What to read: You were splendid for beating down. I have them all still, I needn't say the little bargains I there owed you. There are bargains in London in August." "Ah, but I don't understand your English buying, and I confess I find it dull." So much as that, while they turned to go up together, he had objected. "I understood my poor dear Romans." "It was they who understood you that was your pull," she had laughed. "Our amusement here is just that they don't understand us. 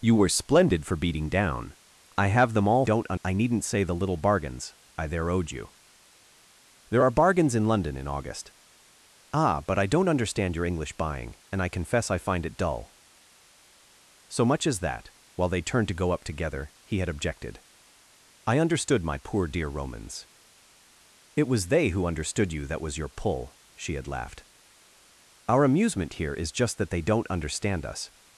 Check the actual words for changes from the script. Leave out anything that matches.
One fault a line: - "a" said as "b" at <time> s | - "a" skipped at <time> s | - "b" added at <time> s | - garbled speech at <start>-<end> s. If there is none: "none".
- "still" said as "don't" at 2.8 s